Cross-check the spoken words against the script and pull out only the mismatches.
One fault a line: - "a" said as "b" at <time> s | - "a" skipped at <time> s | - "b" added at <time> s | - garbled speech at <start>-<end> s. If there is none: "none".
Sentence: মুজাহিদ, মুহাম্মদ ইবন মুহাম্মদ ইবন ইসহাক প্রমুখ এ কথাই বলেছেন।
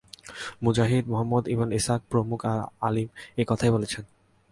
- "মুহাম্মদ ইবন" skipped at 1.7 s
- "আলিম" added at 2.8 s